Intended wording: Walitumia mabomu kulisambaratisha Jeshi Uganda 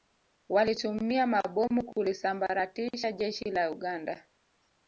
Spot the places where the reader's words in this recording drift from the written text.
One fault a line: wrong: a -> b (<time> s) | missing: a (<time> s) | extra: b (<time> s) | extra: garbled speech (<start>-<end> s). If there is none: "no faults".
extra: la (3.5 s)